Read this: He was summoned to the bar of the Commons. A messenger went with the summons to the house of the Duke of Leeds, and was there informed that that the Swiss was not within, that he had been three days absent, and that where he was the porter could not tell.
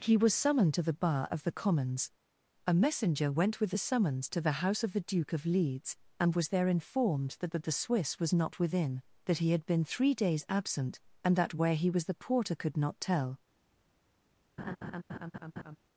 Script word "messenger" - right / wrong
right